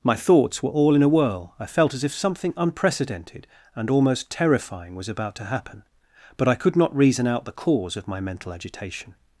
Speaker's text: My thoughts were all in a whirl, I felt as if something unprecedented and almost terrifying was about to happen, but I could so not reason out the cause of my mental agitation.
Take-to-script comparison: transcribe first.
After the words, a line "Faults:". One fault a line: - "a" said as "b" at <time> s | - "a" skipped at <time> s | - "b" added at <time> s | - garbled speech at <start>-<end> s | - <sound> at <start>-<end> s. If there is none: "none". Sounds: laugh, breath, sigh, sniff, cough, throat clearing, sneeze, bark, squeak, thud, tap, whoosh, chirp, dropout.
My thoughts were all in a whirl, I felt as if something unprecedented and almost terrifying was about to happen, but I could not reason out the cause of my mental agitation.
Faults:
- "so" skipped at 6.8 s